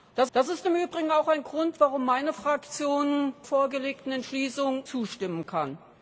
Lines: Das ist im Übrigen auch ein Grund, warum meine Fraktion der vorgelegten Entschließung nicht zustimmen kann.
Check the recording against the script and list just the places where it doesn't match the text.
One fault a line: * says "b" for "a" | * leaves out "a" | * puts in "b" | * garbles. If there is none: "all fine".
* puts in "das"
* leaves out "der"
* leaves out "nicht"